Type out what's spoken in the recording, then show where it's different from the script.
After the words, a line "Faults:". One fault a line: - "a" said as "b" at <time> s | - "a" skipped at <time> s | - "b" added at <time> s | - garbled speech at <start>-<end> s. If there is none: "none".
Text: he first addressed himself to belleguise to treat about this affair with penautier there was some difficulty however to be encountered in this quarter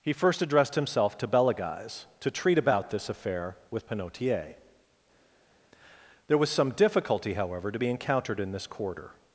he first addressed himself to belleguise to treat about this affair with penautier there was some difficulty however to be encountered in this quarter
Faults:
none